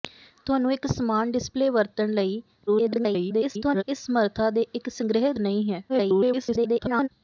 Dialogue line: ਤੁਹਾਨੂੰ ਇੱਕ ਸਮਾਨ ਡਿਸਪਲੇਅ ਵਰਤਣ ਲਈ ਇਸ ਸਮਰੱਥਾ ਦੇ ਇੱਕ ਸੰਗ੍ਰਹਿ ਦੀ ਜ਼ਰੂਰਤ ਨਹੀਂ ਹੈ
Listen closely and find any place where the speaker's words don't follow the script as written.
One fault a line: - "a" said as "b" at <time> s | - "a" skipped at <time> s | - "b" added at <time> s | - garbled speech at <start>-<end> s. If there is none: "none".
- garbled speech at 2.7-3.8 s
- "ਦੀ ਜ਼ਰੂਰਤ" skipped at 5.3 s
- garbled speech at 5.9-7.1 s